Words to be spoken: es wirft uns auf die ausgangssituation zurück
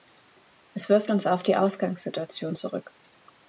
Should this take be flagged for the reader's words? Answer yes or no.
no